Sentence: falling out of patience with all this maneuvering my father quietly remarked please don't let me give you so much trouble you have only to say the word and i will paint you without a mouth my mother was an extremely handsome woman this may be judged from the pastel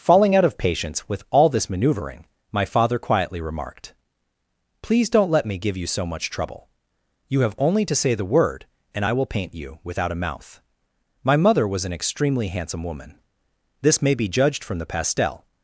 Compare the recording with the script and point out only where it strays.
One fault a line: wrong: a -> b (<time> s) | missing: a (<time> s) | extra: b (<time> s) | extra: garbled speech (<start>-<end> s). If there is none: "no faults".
no faults